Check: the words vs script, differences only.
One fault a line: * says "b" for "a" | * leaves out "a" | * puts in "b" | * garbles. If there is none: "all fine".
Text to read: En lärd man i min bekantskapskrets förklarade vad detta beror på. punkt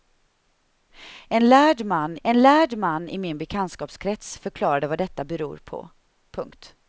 * puts in "en lärd man"